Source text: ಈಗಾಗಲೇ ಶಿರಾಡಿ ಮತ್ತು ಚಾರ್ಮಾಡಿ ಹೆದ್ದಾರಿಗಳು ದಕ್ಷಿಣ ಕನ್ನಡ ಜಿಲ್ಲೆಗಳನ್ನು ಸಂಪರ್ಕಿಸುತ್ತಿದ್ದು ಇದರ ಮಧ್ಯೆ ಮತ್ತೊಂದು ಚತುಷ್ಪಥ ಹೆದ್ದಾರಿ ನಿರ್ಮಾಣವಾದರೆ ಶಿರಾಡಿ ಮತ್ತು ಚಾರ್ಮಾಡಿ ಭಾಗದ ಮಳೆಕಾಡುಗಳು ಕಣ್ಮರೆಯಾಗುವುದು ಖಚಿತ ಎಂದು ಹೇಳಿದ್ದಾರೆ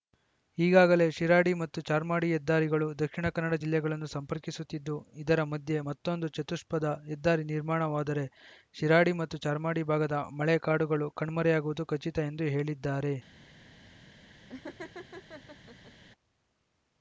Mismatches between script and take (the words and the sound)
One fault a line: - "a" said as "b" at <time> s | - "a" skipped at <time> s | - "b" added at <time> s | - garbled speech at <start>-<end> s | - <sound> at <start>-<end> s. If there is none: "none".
- laugh at 14.5-15.9 s